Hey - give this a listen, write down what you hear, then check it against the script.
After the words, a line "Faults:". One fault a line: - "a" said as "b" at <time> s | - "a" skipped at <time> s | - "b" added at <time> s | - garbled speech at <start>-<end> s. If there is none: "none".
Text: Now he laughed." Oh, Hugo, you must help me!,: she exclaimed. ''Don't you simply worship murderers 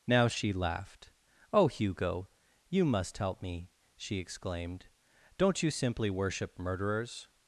Now she laughed." Oh, Hugo, you must help me!,: she exclaimed. ''Don't you simply worship murderers
Faults:
- "he" said as "she" at 0.3 s